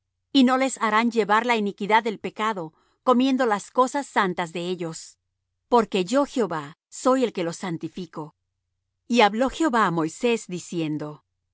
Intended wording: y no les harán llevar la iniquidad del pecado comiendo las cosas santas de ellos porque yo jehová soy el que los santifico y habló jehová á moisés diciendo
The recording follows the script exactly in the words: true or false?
true